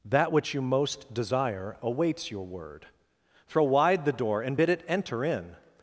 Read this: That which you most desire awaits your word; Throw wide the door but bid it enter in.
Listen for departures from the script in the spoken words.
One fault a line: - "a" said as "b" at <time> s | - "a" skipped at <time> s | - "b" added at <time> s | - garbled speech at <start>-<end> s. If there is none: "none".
- "but" said as "and" at 4.4 s